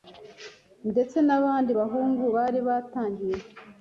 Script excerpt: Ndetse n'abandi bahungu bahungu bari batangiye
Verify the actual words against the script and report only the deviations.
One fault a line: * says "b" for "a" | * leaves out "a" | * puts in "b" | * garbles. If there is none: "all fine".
* leaves out "bahungu"